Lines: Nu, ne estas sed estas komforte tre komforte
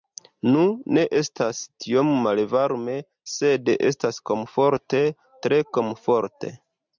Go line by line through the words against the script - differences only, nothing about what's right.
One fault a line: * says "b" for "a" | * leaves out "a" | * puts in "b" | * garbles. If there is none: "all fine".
* puts in "tiom malvarme"